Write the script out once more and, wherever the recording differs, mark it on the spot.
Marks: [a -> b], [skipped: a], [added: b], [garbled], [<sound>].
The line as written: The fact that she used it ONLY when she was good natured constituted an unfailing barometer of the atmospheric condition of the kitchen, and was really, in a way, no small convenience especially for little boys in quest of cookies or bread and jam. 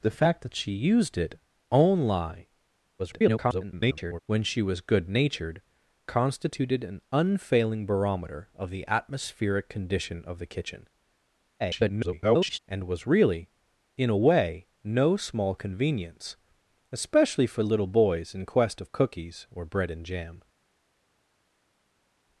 The fact that she used it ONLY [garbled] when she was good natured constituted an unfailing barometer of the atmospheric condition of the kitchen, [garbled] and was really, in a way, no small convenience especially for little boys in quest of cookies or bread and jam.